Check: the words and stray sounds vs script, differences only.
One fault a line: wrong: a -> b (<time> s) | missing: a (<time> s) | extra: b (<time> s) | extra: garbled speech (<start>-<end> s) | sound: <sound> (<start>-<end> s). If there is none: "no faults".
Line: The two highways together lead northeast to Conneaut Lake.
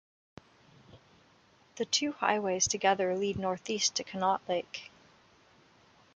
no faults